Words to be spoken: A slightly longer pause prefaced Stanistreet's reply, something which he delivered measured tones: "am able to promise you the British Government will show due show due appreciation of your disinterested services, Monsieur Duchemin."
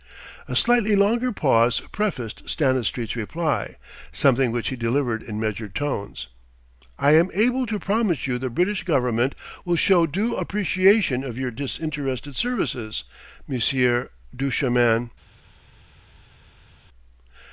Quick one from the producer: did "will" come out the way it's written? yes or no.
yes